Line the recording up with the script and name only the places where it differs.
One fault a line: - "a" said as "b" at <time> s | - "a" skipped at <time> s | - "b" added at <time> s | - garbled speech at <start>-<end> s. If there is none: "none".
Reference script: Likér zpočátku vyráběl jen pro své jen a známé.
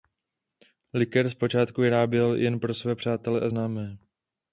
- "jen" said as "přátele" at 3.0 s